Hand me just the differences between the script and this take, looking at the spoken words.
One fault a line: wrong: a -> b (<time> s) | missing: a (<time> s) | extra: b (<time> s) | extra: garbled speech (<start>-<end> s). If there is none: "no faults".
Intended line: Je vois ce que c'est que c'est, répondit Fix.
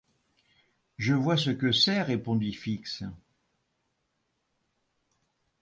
missing: que c'est (2.0 s)